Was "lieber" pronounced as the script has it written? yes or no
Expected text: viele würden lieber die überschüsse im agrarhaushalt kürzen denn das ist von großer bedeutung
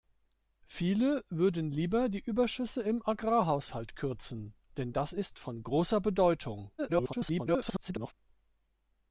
yes